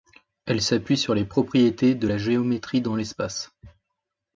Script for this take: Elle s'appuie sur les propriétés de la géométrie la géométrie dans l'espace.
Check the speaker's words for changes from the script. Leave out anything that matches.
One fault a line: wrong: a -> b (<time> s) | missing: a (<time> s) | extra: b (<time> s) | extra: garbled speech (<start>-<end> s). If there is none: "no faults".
missing: la géométrie (2.8 s)